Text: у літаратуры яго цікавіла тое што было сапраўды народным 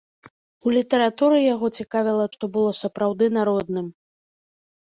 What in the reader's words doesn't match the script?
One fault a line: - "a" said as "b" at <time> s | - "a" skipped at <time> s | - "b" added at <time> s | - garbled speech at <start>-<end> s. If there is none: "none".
- "тое" skipped at 2.2 s